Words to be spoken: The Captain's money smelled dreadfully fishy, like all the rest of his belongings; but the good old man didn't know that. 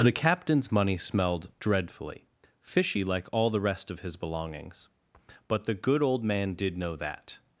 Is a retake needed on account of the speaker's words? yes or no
yes